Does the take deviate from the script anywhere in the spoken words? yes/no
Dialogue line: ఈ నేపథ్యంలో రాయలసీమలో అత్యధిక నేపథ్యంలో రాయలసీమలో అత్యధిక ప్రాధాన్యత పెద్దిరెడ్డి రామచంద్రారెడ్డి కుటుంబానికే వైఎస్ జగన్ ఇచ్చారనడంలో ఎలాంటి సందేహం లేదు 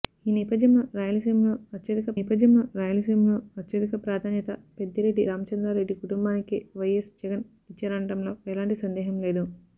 no